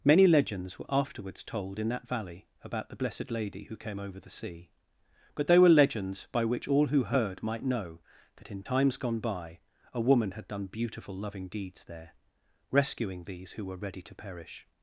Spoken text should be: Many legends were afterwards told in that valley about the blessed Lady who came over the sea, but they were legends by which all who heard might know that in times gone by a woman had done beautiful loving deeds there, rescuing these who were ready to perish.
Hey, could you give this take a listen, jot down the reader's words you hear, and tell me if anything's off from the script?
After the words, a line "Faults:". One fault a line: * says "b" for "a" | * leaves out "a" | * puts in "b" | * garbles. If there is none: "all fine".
Many legends were afterwards told in that valley about the blessed Lady who came over the sea, but they were legends by which all who heard might know that in times gone by a woman had done beautiful loving deeds there, rescuing these who were ready to perish.
Faults:
all fine